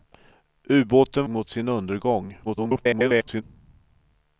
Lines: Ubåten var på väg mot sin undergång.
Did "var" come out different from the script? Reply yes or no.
yes